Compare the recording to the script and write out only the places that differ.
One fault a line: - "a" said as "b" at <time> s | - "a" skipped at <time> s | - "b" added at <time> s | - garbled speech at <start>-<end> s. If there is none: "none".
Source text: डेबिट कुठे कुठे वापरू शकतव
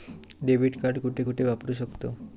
- "कार्ड" added at 0.8 s